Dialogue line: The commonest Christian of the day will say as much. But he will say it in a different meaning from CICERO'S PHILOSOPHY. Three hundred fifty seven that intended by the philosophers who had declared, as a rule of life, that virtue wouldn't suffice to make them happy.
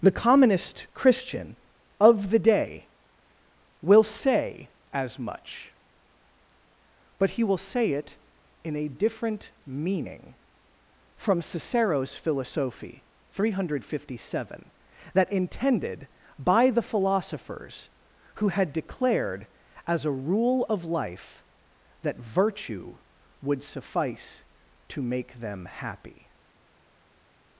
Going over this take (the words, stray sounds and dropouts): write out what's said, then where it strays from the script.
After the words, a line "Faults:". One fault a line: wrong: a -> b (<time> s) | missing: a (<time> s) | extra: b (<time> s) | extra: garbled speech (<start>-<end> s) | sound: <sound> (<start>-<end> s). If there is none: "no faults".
The commonest Christian of the day will say as much. But he will say it in a different meaning from CICERO'S PHILOSOPHY. Three hundred fifty seven that intended by the philosophers who had declared, as a rule of life, that virtue would suffice to make them happy.
Faults:
wrong: wouldn't -> would (23.4 s)